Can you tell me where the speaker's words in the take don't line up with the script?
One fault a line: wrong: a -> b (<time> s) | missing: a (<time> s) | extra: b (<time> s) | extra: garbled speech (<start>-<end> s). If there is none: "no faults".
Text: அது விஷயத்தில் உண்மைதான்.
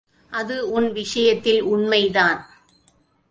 extra: உன் (0.7 s)